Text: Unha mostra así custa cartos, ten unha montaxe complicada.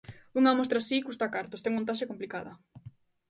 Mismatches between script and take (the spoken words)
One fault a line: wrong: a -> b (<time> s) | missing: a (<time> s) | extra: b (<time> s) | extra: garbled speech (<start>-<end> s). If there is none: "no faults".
missing: unha (1.7 s)